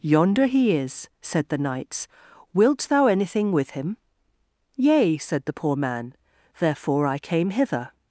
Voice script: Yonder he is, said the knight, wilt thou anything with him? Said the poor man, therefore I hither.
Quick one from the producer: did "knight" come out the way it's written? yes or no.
no